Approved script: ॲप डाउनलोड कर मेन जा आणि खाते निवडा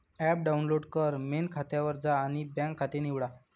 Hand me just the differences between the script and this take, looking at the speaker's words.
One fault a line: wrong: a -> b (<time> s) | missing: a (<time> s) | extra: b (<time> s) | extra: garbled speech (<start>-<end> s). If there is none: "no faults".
extra: खात्यावर (1.5 s)
extra: बँक (2.5 s)